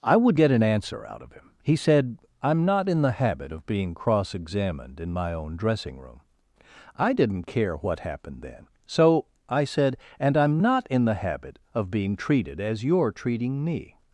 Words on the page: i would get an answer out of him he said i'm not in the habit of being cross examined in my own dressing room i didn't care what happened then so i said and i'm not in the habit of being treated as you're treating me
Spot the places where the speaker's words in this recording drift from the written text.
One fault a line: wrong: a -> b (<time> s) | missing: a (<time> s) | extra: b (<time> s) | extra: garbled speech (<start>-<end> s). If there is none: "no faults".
no faults